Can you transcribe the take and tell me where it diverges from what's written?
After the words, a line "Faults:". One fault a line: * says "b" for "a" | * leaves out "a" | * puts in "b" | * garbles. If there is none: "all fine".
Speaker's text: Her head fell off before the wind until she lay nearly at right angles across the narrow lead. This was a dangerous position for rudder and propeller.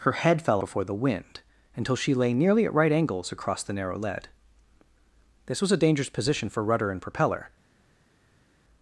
Her head fell before the wind until she lay nearly at right angles across the narrow lead. This was a dangerous position for rudder and propeller.
Faults:
* leaves out "off"